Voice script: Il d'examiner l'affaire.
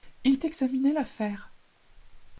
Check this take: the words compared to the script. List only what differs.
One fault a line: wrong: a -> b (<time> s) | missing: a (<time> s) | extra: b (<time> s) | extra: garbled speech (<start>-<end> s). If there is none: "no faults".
no faults